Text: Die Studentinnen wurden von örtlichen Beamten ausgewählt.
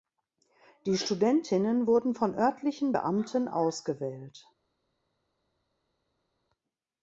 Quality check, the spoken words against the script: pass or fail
pass